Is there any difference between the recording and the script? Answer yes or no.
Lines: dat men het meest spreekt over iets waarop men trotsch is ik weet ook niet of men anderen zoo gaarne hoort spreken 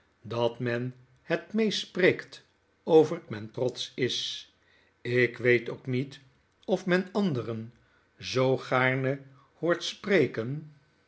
yes